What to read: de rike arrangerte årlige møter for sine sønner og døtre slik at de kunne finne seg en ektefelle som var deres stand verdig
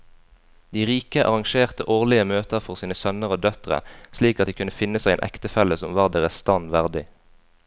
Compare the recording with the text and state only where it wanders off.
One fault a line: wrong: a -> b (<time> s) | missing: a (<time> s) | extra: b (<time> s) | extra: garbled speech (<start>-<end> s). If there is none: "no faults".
no faults